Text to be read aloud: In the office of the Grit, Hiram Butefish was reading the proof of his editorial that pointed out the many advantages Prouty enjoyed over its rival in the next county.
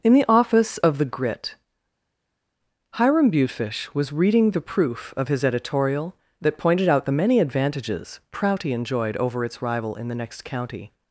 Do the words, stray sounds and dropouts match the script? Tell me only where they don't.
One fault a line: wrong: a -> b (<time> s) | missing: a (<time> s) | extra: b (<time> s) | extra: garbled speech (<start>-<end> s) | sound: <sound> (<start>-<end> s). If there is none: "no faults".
no faults